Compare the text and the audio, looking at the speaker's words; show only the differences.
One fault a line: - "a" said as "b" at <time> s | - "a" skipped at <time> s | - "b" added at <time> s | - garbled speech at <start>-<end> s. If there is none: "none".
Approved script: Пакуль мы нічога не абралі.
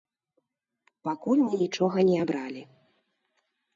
none